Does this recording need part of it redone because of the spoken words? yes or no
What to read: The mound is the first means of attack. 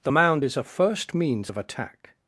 yes